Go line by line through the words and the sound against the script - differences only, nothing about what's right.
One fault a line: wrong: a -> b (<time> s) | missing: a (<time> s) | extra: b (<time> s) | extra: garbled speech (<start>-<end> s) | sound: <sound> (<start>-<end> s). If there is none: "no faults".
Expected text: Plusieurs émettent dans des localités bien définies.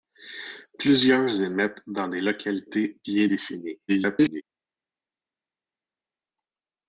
extra: garbled speech (3.9-4.4 s)